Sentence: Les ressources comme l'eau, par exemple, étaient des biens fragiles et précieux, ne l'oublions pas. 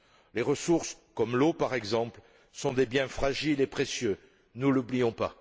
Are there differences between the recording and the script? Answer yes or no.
yes